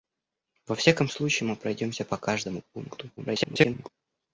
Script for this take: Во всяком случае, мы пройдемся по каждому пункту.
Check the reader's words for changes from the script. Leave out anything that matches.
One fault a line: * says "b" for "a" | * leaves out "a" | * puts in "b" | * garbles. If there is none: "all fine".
* garbles